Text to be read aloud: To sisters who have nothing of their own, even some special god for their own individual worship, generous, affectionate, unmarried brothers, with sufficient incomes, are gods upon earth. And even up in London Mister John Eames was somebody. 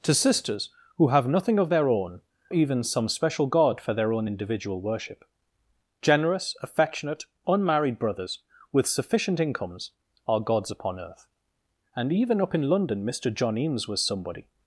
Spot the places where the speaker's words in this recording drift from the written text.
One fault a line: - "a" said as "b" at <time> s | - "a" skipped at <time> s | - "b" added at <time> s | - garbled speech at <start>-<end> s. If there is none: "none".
none